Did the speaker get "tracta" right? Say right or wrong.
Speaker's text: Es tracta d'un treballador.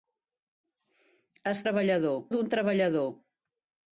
wrong